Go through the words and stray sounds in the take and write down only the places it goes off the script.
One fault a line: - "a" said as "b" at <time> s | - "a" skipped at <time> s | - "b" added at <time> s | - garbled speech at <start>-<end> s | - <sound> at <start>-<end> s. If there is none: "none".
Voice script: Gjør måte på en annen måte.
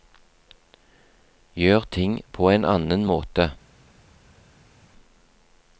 - "måte" said as "ting" at 2.0 s